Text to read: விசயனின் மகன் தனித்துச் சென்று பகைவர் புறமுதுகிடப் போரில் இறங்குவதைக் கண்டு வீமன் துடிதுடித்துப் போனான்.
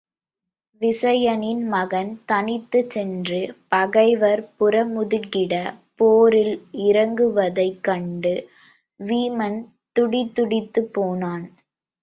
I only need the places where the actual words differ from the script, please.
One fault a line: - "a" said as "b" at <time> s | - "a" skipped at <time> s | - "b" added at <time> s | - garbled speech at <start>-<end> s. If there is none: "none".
none